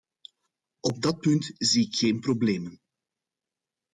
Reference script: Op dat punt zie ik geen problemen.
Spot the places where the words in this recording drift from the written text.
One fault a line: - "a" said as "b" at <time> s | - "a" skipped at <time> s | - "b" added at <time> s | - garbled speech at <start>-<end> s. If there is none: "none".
none